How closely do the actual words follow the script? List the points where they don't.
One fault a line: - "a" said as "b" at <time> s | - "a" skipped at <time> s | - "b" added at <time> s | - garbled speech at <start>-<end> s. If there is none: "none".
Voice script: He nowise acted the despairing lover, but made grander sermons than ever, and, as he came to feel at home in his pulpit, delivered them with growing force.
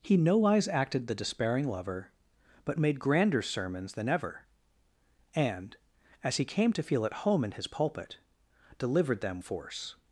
- "with growing" skipped at 9.4 s